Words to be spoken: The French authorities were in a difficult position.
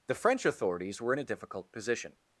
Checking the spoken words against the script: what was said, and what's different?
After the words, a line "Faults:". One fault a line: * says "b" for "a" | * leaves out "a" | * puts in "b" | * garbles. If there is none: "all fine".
The French authorities were in a difficult position.
Faults:
all fine